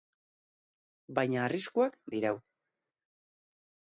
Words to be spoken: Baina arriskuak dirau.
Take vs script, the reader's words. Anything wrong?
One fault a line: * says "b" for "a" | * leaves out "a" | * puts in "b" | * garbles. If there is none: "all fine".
all fine